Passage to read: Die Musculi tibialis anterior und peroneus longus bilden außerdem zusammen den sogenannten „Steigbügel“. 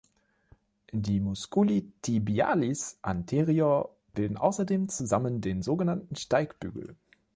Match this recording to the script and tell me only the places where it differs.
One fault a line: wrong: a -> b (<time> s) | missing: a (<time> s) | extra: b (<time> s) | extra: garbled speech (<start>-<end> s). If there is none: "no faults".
missing: und peroneus longus (4.0 s)